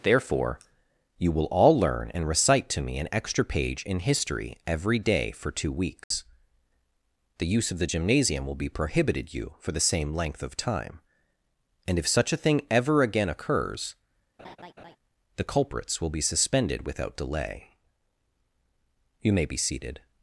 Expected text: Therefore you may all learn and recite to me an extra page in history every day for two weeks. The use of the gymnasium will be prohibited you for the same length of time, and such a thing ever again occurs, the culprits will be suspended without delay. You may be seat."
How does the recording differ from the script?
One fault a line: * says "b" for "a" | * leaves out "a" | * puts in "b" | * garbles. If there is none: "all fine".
* says "will" for "may"
* puts in "if"
* says "seated" for "seat"